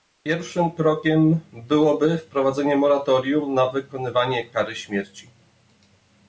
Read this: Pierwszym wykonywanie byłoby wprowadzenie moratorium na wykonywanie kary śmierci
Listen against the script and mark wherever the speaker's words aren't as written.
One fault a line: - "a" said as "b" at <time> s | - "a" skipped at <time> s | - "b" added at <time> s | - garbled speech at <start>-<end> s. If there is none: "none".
- "wykonywanie" said as "krokiem" at 0.7 s